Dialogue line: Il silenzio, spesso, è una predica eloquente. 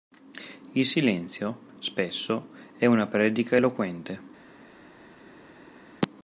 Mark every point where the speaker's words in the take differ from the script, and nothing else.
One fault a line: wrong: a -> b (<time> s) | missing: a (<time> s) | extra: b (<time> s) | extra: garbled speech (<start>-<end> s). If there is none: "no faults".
no faults